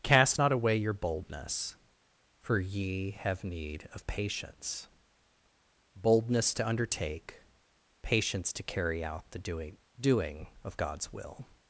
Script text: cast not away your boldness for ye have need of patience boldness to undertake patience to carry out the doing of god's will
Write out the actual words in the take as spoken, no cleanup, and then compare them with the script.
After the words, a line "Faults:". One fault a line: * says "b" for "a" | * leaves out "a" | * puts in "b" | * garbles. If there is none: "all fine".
cast not away your boldness for ye have need of patience boldness to undertake patience to carry out the doing doing of god's will
Faults:
* puts in "doing"